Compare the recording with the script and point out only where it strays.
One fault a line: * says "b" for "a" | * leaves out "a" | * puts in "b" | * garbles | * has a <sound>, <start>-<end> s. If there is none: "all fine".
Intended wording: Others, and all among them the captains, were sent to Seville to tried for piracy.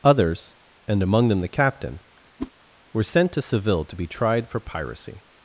* leaves out "all"
* says "captain" for "captains"
* has a whoosh, 2.4-2.5 s
* puts in "be"